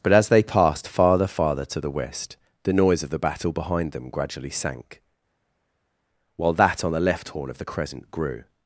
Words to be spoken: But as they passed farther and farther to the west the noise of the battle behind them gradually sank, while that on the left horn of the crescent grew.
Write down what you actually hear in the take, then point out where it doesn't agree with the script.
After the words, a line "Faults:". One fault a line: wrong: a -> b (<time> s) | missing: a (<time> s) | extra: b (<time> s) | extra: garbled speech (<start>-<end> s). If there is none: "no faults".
But as they passed farther farther to the west the noise of the battle behind them gradually sank, while that on the left horn of the crescent grew.
Faults:
missing: and (1.3 s)